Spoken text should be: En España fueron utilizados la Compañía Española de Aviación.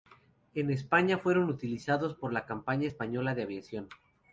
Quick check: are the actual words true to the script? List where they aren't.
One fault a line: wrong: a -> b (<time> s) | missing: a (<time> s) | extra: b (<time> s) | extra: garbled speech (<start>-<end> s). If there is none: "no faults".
extra: por (2.1 s)